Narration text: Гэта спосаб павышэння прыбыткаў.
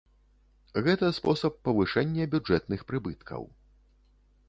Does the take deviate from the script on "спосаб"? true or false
false